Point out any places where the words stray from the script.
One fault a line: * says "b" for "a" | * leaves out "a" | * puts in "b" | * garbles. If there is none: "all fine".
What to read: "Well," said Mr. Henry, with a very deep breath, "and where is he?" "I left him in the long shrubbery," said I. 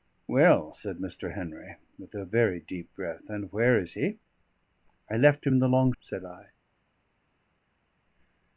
* leaves out "shrubbery"